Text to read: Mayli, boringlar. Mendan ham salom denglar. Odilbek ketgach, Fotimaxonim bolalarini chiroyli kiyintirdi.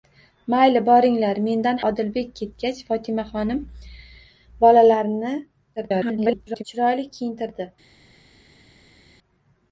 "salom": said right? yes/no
no